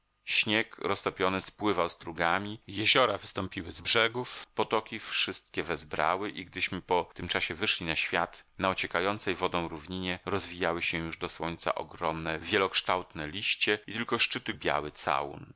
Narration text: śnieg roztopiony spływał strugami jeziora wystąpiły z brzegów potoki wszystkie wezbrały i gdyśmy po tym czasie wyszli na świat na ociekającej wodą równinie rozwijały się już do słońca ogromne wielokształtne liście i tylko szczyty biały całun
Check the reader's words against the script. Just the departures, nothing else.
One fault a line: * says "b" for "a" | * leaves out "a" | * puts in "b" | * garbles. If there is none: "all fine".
all fine